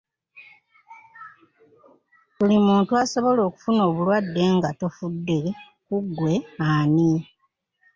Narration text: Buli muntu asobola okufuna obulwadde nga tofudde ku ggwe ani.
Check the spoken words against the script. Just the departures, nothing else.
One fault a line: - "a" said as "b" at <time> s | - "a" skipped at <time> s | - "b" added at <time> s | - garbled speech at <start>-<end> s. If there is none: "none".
none